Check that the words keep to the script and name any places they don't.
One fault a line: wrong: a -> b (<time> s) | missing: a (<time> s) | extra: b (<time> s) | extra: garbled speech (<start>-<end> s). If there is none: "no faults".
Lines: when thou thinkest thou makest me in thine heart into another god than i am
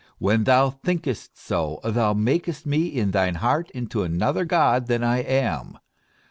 extra: so (1.4 s)